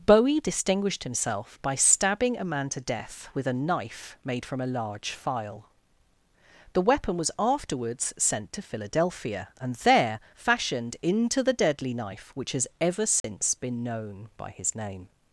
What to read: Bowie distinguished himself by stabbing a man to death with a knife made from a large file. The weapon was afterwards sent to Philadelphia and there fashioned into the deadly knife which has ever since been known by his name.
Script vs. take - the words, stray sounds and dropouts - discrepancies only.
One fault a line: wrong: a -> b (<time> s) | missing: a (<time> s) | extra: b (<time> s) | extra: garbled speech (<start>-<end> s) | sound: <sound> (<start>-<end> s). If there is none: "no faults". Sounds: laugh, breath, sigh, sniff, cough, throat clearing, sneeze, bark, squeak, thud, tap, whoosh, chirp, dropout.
sound: dropout (13.2-13.2 s)